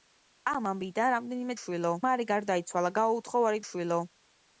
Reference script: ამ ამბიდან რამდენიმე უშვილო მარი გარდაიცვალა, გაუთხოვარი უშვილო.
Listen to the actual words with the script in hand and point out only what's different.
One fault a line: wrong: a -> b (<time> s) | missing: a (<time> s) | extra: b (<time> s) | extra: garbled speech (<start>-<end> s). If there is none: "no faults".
no faults